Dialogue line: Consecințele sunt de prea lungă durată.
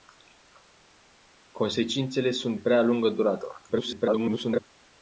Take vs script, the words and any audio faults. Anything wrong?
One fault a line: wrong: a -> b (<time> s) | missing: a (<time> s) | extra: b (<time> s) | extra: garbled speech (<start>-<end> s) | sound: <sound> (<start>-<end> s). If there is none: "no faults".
missing: de (2.6 s)
extra: garbled speech (3.7-4.6 s)